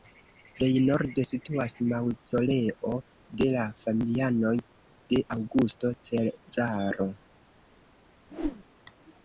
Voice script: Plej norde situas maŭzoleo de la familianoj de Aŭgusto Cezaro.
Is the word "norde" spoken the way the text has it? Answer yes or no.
yes